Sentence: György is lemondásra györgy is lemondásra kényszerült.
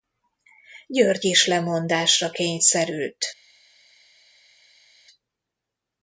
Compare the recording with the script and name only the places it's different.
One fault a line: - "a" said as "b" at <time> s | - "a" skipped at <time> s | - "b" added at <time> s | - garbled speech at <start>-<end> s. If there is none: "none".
- "györgy is lemondásra" skipped at 2.3 s